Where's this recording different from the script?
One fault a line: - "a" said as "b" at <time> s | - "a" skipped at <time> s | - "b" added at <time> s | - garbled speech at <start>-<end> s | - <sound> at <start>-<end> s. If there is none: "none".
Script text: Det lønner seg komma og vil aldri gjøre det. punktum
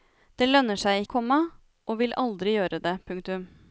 none